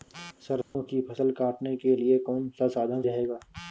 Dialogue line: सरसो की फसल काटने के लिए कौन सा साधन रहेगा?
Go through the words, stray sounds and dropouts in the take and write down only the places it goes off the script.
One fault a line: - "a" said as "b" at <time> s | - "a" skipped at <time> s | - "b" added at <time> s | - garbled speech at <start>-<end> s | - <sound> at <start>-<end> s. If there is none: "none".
- dropout at 0.6-0.8 s